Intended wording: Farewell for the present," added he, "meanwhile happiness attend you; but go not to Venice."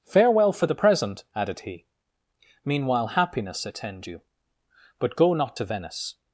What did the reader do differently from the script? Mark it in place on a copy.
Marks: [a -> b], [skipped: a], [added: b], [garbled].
Farewell for the present," added he, "meanwhile happiness attend you; but go not to Venice."